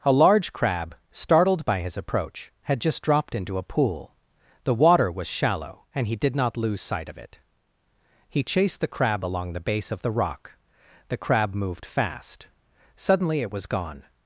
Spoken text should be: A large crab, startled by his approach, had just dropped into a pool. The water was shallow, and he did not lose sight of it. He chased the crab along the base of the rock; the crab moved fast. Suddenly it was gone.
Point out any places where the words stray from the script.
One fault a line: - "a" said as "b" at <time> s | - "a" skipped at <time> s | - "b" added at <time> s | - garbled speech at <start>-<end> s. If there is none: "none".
none